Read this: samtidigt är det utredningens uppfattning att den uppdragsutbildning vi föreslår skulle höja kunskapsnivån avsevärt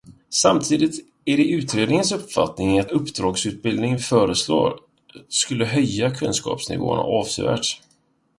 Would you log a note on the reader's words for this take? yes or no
yes